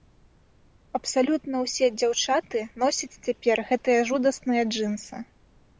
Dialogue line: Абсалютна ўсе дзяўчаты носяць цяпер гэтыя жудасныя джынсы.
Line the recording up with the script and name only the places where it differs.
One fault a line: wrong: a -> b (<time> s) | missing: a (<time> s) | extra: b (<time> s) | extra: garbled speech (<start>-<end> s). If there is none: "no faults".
no faults